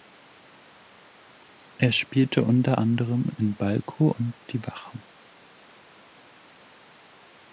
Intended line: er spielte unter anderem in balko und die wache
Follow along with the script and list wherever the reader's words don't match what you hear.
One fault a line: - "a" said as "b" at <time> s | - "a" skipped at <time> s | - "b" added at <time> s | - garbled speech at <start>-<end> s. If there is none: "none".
none